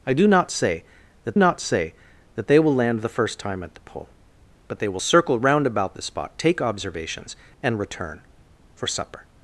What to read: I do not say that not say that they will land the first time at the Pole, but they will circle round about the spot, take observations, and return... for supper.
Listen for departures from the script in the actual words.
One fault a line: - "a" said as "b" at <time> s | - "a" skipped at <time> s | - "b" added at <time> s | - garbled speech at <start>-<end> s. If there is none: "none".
none